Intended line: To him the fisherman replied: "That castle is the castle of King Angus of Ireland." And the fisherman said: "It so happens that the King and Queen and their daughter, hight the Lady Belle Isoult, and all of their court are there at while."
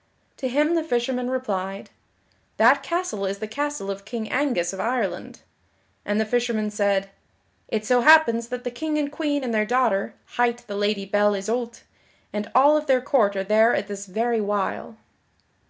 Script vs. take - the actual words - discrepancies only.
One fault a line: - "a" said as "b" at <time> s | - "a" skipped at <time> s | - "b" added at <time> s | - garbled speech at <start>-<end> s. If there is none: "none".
- "this very" added at 13.9 s